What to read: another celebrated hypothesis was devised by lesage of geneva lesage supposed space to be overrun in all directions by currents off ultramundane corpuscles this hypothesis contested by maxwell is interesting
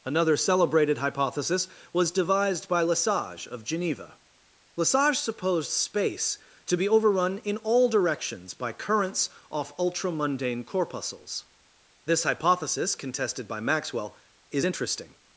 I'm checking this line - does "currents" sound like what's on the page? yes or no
yes